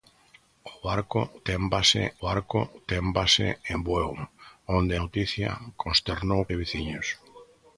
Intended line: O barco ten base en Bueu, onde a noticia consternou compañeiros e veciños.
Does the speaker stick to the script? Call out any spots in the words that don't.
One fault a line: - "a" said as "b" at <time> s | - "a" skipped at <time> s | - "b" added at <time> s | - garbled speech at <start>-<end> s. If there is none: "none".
- "barco ten base" added at 2.3 s
- "a" skipped at 4.9 s
- "compañeiros" skipped at 6.4 s